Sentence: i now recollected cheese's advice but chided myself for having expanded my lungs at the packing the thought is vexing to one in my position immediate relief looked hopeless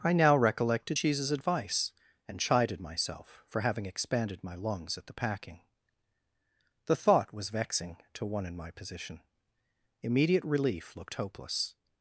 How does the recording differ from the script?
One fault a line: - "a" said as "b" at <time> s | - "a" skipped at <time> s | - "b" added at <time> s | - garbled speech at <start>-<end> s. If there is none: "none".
- "but" said as "and" at 2.3 s
- "is" said as "was" at 7.3 s